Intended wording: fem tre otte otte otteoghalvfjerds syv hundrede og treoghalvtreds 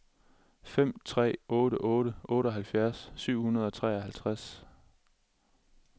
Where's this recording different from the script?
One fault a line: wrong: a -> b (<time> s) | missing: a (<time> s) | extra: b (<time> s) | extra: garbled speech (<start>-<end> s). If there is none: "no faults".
no faults